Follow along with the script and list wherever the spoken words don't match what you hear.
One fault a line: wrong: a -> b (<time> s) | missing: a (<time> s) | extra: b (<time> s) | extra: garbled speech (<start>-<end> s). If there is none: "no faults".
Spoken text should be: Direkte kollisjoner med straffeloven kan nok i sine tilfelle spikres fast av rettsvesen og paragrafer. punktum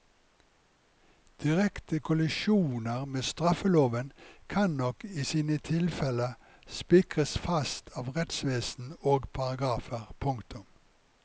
no faults